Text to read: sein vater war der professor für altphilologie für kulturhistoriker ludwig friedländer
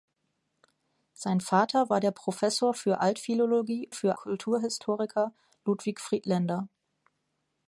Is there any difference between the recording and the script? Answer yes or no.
no